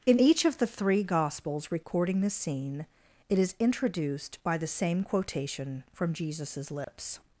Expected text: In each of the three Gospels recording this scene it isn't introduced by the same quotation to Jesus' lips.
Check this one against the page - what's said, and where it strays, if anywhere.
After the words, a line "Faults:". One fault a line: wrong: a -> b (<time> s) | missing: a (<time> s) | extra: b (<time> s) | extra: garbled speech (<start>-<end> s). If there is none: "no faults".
In each of the three Gospels recording this scene it is introduced by the same quotation from Jesus' lips.
Faults:
wrong: isn't -> is (3.4 s)
wrong: to -> from (5.9 s)